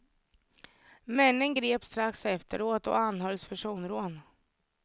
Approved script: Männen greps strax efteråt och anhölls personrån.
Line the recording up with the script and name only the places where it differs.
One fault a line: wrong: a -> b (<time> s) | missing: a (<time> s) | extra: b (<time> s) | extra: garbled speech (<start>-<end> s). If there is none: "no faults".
no faults